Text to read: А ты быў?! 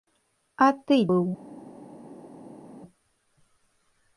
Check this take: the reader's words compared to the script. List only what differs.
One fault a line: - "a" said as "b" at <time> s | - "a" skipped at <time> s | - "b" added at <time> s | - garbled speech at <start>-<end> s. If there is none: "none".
none